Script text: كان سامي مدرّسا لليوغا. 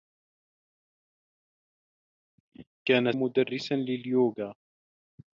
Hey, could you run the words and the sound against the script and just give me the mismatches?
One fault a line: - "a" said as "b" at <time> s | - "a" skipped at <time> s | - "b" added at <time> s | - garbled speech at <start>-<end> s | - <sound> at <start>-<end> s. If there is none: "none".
- "سامي" skipped at 3.1 s